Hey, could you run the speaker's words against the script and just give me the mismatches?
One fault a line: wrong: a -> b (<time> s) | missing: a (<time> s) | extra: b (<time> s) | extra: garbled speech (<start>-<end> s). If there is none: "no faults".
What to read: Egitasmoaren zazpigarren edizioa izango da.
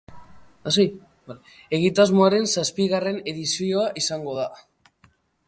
no faults